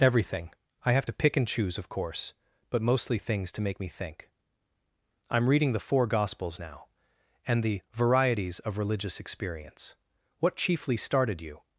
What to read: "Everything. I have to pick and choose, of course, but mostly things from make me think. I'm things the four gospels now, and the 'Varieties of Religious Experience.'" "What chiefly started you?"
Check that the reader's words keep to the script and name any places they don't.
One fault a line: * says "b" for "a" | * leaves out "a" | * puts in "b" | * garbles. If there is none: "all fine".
* says "to" for "from"
* says "reading" for "things"